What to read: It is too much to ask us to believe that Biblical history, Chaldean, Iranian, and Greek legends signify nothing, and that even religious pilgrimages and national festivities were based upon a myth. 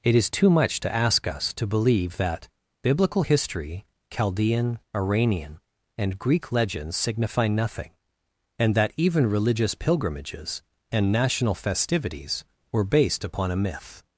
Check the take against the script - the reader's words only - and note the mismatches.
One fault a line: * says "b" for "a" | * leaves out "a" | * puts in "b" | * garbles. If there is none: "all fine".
all fine